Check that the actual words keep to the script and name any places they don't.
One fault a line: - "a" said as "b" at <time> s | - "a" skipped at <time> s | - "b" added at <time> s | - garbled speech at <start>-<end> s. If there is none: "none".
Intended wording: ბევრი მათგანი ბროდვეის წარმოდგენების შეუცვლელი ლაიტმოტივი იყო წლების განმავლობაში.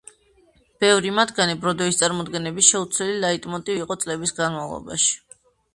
none